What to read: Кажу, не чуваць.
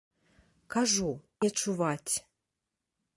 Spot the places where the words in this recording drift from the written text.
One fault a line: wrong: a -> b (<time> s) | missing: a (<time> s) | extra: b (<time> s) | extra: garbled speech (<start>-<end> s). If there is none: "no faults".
no faults